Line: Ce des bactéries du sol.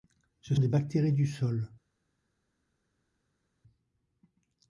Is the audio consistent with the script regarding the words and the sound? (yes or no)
yes